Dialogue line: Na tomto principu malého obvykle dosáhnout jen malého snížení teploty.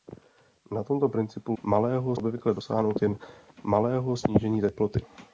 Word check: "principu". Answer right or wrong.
right